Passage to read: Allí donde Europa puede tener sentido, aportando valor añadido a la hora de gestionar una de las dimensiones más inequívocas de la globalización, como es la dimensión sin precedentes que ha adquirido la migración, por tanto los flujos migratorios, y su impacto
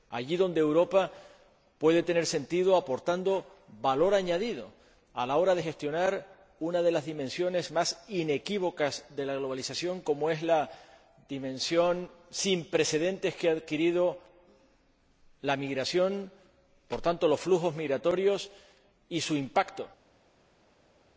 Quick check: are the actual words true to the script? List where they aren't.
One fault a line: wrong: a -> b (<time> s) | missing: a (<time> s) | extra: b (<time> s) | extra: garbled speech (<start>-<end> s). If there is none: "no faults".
no faults